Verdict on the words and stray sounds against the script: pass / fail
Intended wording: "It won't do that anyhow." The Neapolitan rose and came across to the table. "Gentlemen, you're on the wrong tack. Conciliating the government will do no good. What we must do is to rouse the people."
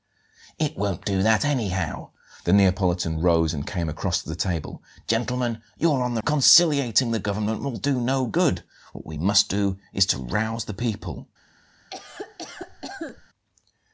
fail